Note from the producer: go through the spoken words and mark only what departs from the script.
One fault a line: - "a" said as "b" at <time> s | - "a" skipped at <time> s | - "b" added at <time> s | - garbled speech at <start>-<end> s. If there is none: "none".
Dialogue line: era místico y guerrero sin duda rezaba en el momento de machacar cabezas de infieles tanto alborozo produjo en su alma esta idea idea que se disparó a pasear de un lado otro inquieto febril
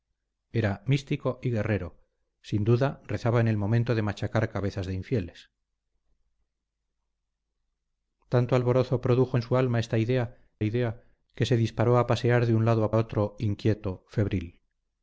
none